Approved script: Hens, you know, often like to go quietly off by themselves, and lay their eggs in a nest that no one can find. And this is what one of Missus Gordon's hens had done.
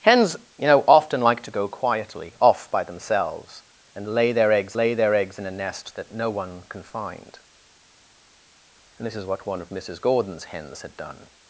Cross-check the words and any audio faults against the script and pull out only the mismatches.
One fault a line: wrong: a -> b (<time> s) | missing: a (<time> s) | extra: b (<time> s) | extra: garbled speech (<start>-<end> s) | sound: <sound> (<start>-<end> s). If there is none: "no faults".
extra: lay their eggs (4.8 s)